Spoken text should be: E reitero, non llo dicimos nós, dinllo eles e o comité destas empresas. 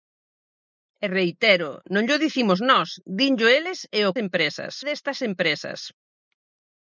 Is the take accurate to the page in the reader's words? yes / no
no